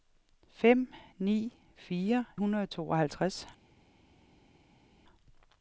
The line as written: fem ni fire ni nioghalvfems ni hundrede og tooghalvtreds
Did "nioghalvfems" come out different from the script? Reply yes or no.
yes